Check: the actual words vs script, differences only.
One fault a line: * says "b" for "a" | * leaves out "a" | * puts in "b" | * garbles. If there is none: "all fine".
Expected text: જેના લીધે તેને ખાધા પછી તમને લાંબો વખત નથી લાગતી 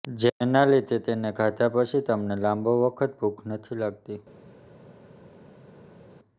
* puts in "ભૂખ"